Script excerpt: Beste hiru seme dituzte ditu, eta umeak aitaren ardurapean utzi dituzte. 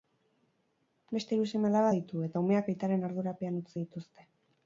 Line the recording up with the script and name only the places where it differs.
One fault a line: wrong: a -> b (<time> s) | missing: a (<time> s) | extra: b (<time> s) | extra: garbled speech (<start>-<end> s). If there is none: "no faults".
wrong: dituzte -> alaba (1.7 s)